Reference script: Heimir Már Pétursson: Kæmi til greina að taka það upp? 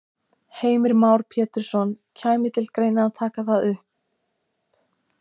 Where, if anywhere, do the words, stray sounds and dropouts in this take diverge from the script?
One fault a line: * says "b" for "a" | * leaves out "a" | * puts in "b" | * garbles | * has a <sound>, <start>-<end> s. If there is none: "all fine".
all fine